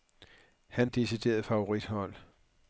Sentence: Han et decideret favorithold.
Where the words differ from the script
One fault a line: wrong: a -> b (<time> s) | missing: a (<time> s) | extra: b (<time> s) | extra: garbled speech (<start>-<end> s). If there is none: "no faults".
no faults